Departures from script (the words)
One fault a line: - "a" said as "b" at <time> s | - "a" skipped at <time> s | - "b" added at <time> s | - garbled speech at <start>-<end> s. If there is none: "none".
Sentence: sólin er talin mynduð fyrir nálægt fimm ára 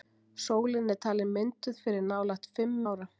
none